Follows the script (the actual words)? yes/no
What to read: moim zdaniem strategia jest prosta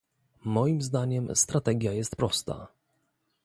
yes